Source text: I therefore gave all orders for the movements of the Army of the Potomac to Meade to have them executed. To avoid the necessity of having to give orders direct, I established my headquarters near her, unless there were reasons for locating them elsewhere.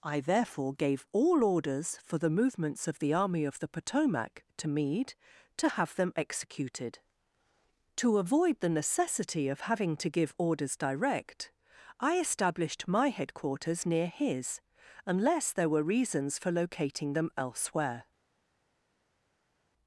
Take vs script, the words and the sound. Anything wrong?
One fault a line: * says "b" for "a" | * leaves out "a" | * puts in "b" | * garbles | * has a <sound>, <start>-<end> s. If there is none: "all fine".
* says "his" for "her"